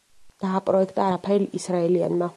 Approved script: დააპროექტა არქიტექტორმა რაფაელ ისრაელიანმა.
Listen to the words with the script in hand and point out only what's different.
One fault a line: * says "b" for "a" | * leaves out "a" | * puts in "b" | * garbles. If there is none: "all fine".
* leaves out "არქიტექტორმა"